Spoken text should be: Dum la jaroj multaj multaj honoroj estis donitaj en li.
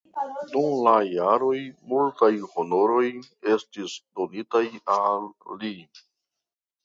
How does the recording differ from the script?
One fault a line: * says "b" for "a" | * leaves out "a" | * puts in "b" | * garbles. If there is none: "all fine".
* leaves out "multaj"
* says "al" for "en"